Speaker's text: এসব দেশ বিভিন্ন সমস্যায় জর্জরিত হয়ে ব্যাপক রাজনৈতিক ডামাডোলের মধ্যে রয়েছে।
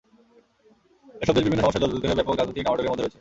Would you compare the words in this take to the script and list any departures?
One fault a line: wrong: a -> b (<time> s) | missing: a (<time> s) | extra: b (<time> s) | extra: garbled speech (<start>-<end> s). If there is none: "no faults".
no faults